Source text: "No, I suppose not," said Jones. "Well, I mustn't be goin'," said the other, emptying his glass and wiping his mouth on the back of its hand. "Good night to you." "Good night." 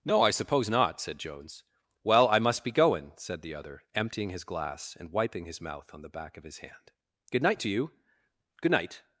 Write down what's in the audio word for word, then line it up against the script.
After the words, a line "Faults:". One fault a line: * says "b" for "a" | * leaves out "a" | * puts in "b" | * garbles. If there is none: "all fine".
"No, I suppose not," said Jones. "Well, I must be goin'," said the other, emptying his glass and wiping his mouth on the back of his hand. "Good night to you." "Good night."
Faults:
* says "must" for "mustn't"
* says "his" for "its"